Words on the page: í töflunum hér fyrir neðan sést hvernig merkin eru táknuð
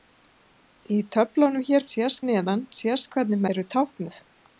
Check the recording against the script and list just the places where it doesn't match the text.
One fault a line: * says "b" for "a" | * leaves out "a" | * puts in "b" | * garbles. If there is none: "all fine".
* says "sést" for "fyrir"
* leaves out "merkin"